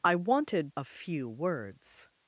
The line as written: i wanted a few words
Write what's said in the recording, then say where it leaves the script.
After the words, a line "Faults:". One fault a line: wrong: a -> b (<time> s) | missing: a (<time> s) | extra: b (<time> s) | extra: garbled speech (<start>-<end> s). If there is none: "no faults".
i wanted a few words
Faults:
no faults